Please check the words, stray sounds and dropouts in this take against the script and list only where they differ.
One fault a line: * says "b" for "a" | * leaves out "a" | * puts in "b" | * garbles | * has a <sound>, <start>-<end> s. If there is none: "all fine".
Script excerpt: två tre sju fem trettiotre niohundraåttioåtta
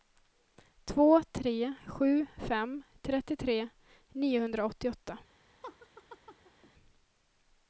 * has a laugh, 5.6-6.7 s